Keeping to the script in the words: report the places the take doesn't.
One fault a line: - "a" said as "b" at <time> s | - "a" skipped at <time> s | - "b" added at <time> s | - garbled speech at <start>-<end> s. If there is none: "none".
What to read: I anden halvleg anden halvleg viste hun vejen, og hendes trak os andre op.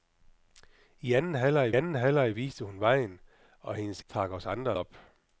none